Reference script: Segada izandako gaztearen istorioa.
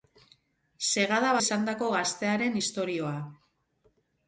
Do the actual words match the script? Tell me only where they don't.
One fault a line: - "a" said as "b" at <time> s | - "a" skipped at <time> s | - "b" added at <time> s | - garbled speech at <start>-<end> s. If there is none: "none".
none